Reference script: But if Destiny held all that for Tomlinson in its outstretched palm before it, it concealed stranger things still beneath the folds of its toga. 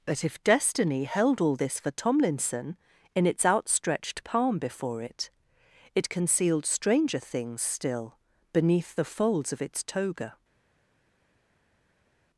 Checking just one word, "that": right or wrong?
wrong